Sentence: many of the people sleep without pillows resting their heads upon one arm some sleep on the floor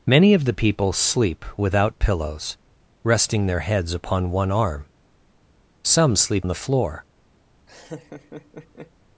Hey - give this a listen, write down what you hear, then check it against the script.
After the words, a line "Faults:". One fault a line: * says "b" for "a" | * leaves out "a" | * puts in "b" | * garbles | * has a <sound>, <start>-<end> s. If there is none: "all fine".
many of the people sleep without pillows resting their heads upon one arm some sleep the floor
Faults:
* leaves out "on"
* has a laugh, 7.7-8.9 s